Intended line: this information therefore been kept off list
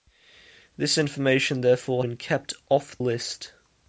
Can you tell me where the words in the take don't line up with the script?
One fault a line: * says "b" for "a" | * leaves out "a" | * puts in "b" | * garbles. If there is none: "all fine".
all fine